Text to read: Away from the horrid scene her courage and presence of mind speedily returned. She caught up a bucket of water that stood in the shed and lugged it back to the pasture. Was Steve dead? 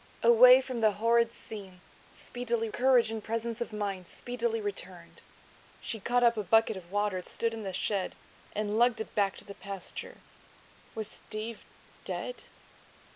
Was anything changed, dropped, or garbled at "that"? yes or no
yes